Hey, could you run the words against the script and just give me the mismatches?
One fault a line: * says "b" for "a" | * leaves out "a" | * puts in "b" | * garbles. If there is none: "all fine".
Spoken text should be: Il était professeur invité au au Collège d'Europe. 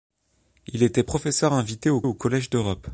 all fine